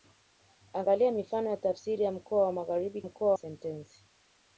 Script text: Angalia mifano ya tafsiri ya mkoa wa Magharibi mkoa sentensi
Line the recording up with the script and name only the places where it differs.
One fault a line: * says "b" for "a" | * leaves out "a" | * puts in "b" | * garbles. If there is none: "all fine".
all fine